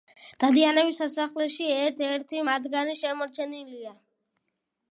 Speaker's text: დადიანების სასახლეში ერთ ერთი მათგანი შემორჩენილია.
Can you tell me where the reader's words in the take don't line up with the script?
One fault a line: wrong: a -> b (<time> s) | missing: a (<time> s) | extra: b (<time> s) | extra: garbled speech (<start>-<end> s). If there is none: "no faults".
no faults